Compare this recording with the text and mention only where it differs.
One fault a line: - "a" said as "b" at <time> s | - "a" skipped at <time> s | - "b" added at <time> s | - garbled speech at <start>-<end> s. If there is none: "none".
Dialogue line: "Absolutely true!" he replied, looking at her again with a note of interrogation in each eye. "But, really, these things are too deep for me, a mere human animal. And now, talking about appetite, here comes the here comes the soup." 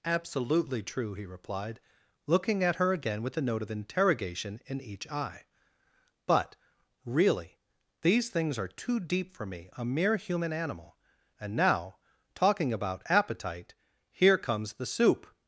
- "here comes the" skipped at 14.9 s